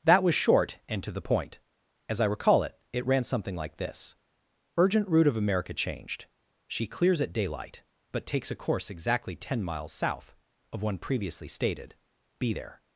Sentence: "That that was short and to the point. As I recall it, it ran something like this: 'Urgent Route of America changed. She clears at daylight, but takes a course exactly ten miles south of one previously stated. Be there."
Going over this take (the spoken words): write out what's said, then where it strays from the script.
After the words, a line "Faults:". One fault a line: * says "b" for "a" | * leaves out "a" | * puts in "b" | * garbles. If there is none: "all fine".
"That was short and to the point. As I recall it, it ran something like this: 'Urgent Route of America changed. She clears at daylight, but takes a course exactly ten miles south of one previously stated. Be there."
Faults:
* leaves out "that"